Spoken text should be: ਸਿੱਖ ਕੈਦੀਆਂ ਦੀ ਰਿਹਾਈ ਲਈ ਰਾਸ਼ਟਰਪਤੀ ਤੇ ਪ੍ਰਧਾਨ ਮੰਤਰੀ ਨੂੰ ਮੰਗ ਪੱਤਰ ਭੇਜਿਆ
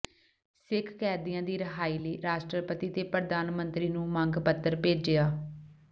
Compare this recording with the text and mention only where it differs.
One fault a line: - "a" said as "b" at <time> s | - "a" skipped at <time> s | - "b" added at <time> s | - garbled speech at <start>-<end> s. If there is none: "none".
none